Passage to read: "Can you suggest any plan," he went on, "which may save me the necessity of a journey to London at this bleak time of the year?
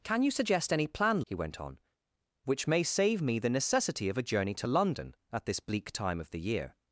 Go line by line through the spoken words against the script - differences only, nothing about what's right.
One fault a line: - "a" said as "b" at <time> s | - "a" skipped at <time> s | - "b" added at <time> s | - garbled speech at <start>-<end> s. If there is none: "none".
none